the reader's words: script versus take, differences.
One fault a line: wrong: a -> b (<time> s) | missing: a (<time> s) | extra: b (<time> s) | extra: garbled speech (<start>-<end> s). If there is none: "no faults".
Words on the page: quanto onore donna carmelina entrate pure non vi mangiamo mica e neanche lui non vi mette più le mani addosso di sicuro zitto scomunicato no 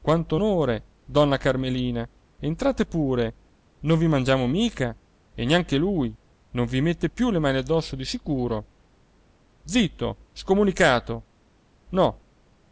no faults